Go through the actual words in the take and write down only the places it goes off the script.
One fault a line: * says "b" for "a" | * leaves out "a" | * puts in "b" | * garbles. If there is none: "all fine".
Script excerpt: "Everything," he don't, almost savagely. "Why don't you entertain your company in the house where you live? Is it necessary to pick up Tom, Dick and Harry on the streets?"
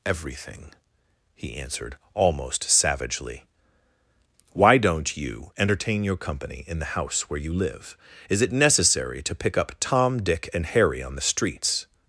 * says "answered" for "don't"